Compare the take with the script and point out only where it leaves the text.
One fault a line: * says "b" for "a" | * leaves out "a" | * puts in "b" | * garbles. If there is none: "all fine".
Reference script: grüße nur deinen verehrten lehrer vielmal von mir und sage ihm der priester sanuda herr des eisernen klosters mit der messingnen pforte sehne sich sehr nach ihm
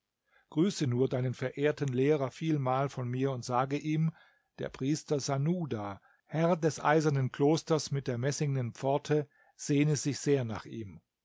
all fine